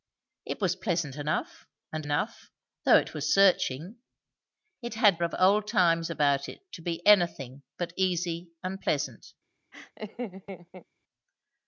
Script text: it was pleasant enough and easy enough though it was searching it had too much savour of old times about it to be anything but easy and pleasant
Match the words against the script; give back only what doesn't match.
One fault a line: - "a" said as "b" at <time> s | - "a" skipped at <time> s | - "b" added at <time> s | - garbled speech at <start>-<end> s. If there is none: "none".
- "easy" skipped at 2.1 s
- "too much savour" skipped at 5.2 s